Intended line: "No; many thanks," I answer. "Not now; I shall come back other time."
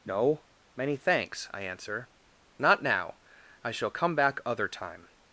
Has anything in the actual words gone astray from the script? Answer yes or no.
no